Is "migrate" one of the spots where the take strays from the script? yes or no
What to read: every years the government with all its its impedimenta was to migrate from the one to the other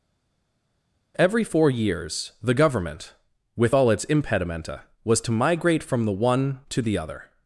no